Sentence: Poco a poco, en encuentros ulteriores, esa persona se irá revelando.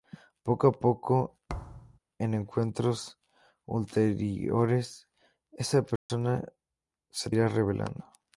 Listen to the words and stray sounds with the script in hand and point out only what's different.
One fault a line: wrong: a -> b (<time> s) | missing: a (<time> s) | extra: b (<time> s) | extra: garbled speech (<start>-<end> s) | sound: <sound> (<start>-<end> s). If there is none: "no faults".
sound: thud (1.5-2.0 s)
sound: dropout (6.0-6.1 s)